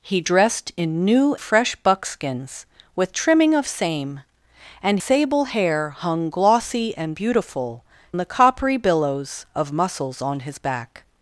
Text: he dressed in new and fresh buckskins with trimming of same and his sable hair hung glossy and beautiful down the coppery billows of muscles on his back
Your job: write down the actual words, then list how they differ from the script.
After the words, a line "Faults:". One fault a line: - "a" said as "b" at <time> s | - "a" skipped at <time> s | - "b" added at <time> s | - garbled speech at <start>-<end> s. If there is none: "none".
he dressed in new fresh buckskins with trimming of same and sable hair hung glossy and beautiful the coppery billows of muscles on his back
Faults:
- "and" skipped at 1.4 s
- "his" skipped at 5.0 s
- "down" skipped at 7.8 s